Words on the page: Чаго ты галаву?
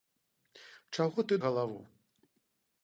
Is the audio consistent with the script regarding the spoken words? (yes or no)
yes